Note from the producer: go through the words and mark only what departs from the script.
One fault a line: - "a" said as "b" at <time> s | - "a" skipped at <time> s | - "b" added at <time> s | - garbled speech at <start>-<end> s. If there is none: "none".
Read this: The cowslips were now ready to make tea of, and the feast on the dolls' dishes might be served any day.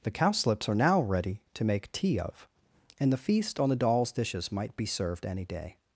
- "were" said as "are" at 0.7 s